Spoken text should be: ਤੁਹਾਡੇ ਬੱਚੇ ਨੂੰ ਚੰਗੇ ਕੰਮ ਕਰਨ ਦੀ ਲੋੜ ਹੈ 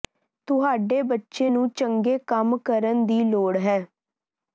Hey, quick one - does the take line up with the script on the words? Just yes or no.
yes